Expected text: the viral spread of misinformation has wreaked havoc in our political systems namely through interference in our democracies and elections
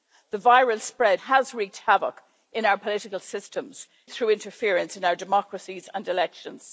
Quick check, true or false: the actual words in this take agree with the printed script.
false